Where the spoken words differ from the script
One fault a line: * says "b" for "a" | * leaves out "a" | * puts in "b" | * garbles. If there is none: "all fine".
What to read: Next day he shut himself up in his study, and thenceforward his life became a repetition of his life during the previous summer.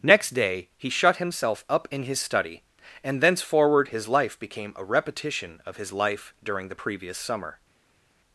all fine